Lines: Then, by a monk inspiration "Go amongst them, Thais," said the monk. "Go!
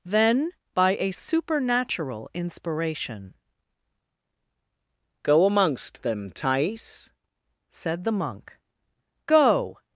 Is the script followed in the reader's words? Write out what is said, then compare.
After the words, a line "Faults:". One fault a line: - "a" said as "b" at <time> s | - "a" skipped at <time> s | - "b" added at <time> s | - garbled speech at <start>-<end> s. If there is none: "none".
Then, by a supernatural inspiration "Go amongst them, Thais," said the monk. "Go!
Faults:
- "monk" said as "supernatural" at 1.1 s